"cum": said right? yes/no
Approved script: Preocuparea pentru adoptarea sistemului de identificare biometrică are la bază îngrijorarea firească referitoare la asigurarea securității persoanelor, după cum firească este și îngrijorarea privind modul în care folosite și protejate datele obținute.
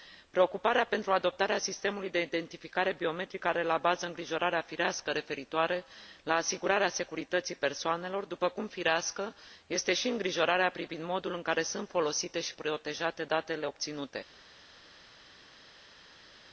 yes